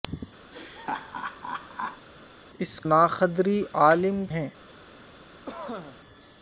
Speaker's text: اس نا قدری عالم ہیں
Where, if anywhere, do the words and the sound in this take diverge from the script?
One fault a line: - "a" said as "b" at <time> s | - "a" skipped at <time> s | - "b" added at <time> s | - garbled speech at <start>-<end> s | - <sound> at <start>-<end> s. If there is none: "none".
- laugh at 0.5-2.1 s
- cough at 5.5-6.0 s